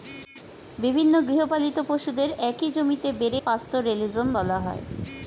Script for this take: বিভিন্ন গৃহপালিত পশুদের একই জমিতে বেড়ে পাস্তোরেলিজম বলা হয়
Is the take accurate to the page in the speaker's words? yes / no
yes